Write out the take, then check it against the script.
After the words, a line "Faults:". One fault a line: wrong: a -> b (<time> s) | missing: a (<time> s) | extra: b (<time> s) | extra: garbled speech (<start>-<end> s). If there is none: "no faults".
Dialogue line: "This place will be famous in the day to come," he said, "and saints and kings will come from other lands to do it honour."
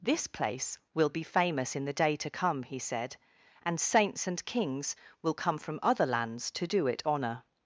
"This place will be famous in the day to come," he said, "and saints and kings will come from other lands to do it honour."
Faults:
no faults